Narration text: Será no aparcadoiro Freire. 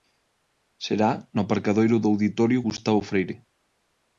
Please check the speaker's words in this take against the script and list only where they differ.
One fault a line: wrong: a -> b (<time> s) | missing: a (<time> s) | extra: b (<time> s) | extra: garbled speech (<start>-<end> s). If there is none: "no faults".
extra: do Auditorio Gustavo (2.0 s)